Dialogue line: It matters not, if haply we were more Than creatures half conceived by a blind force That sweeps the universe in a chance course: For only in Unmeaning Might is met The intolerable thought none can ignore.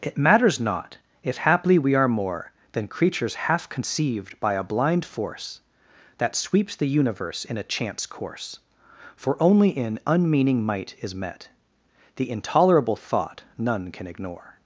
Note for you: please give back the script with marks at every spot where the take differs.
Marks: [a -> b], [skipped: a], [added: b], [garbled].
It matters not, if haply we [were -> are] more Than creatures half conceived by a blind force That sweeps the universe in a chance course: For only in Unmeaning Might is met The intolerable thought none can ignore.